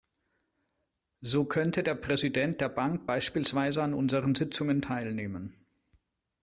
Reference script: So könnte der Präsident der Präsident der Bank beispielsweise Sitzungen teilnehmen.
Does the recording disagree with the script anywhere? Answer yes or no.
yes